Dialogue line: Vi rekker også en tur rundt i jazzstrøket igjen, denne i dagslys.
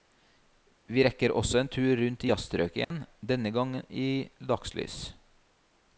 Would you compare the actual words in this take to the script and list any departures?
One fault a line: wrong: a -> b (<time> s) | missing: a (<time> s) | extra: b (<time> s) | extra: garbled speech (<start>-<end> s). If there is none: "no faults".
extra: gang (3.5 s)